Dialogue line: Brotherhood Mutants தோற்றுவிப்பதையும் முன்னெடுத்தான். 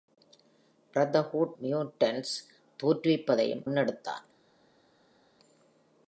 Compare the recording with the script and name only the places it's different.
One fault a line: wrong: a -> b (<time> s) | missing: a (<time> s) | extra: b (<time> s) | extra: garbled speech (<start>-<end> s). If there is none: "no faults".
no faults